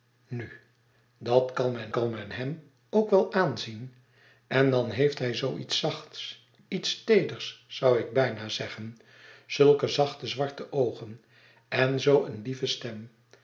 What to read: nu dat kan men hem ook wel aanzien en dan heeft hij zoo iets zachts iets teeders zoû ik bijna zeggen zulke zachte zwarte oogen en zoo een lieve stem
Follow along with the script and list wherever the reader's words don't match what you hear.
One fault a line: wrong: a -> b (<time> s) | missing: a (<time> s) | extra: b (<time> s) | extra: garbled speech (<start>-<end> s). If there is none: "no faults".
extra: kan men (1.9 s)